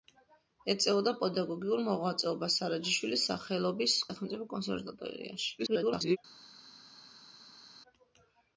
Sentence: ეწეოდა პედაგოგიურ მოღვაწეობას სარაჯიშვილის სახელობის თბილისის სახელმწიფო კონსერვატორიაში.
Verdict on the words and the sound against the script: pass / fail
fail